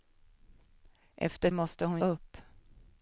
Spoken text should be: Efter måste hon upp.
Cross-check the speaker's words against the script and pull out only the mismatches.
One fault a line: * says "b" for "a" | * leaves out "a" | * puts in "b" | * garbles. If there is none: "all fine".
all fine